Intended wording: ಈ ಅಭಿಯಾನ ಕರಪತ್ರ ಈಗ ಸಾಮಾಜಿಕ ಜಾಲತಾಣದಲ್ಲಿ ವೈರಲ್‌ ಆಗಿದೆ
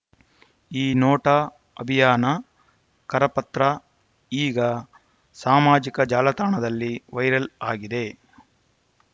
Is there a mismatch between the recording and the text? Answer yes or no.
yes